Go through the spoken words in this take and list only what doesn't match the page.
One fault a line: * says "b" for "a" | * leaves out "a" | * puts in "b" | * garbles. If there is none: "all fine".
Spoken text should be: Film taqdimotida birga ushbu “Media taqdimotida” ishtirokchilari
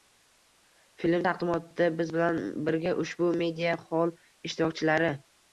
* puts in "biz bilan"
* says "xoll" for "taqdimotida"